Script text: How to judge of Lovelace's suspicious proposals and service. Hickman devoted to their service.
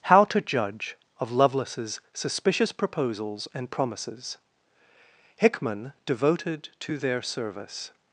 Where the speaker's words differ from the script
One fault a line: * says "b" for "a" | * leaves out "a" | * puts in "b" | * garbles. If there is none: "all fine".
* says "promises" for "service"